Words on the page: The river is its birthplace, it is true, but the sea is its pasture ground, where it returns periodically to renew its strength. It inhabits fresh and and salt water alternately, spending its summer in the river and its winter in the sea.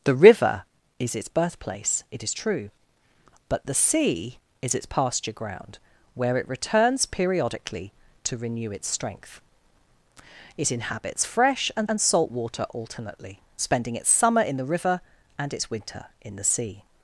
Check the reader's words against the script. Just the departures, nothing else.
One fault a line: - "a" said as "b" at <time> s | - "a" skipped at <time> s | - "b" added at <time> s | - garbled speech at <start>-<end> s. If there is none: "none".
none